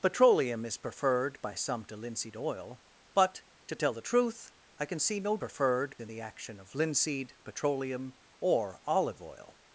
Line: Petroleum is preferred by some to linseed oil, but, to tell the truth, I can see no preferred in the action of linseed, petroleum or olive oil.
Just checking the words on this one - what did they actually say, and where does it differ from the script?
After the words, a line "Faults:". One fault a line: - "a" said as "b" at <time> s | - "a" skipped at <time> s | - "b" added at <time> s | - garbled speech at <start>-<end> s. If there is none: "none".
Petroleum is preferred by some to linseed oil, but, to tell the truth, I can see no preferred in the action of linseed, petroleum or olive oil.
Faults:
none